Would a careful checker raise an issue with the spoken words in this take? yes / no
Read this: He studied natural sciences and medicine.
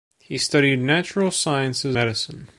yes